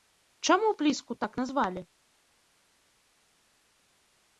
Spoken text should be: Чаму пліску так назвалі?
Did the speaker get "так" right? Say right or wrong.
right